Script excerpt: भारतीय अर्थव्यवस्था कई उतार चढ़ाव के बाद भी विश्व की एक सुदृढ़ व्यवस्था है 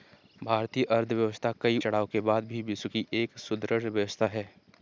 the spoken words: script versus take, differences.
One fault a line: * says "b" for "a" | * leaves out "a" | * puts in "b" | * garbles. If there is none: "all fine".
* leaves out "उतार"